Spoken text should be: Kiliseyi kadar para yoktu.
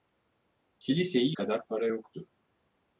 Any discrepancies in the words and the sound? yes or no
no